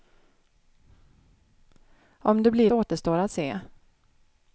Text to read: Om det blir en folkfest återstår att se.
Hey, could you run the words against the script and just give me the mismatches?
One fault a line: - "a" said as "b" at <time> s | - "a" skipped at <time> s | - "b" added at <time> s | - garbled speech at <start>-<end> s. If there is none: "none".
- "en folkfest" skipped at 2.7 s